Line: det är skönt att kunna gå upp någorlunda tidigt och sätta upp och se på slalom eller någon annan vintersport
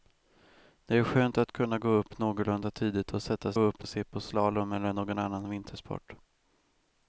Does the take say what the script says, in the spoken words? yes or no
yes